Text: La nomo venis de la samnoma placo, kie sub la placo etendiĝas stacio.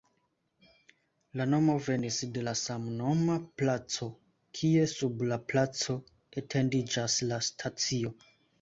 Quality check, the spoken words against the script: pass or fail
fail